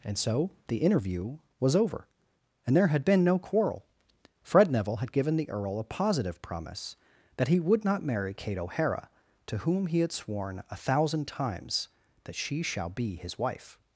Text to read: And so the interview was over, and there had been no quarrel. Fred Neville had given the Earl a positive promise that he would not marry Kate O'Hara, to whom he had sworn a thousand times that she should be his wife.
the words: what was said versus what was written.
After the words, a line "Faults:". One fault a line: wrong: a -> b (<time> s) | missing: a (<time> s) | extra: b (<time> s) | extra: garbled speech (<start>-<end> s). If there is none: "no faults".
And so the interview was over, and there had been no quarrel. Fred Neville had given the Earl a positive promise that he would not marry Kate O'Hara, to whom he had sworn a thousand times that she shall be his wife.
Faults:
wrong: should -> shall (12.6 s)